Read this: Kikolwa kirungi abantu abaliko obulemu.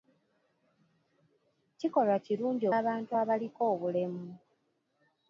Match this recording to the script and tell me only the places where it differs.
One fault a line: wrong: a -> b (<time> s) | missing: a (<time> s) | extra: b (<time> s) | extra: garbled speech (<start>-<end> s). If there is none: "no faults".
no faults